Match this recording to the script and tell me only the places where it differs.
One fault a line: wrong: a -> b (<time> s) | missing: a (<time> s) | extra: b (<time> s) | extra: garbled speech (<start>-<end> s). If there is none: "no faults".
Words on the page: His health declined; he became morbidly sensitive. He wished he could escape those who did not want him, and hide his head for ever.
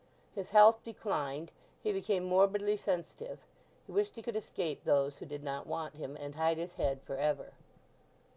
no faults